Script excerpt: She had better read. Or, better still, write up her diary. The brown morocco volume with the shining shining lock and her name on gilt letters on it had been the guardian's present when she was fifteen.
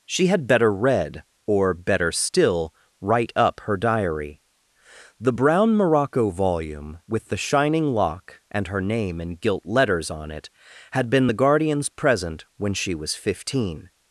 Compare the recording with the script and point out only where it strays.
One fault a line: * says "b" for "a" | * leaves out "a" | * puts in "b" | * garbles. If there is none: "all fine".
* leaves out "shining"
* says "in" for "on"